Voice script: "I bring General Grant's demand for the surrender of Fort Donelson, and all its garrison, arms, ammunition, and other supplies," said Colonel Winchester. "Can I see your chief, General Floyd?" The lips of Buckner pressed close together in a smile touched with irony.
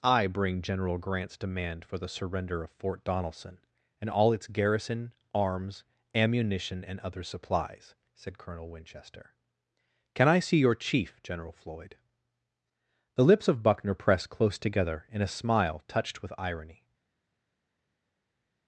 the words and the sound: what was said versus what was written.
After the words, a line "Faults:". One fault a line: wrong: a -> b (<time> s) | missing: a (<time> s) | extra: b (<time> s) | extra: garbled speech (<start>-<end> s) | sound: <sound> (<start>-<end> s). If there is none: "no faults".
"I bring General Grant's demand for the surrender of Fort Donelson, and all its garrison, arms, ammunition, and other supplies," said Colonel Winchester. "Can I see your chief, General Floyd?" The lips of Buckner pressed close together in a smile touched with irony.
Faults:
no faults